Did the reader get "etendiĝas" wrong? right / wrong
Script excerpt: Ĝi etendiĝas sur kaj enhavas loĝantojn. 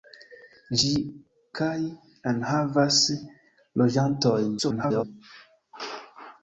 wrong